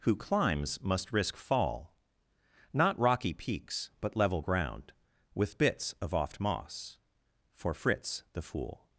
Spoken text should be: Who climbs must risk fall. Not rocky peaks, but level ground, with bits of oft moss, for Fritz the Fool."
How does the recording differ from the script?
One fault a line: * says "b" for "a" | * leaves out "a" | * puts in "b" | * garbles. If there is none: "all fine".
all fine